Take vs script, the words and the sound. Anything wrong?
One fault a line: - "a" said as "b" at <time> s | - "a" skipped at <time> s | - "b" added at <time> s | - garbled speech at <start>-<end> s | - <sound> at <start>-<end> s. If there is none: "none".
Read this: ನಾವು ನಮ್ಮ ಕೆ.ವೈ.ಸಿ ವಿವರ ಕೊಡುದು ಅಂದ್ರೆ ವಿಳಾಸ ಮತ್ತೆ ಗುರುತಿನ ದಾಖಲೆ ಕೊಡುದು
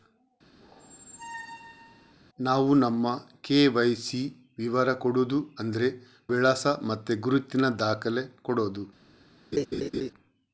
- squeak at 0.6-2.1 s
- laugh at 9.5-10.1 s